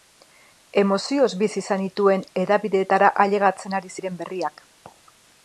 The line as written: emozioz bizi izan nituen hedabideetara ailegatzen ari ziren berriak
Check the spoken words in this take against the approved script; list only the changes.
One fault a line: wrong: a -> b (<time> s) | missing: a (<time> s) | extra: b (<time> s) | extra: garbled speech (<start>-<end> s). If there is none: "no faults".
no faults